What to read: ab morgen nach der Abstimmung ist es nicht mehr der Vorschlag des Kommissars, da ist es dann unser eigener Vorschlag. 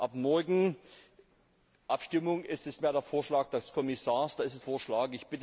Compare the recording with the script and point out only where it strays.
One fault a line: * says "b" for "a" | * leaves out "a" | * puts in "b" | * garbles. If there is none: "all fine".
* leaves out "nach der"
* leaves out "nicht"
* leaves out "dann unser eigener"